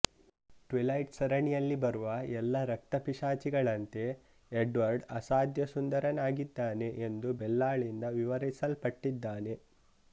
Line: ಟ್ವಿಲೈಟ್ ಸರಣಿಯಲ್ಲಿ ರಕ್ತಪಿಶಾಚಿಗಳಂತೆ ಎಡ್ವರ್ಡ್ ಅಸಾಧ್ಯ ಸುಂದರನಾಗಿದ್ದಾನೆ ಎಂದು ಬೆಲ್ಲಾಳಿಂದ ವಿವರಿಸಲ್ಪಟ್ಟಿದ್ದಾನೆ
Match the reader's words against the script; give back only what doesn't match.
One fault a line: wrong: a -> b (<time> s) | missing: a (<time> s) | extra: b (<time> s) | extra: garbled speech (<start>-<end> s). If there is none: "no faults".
extra: ಬರುವ ಎಲ್ಲ (1.8 s)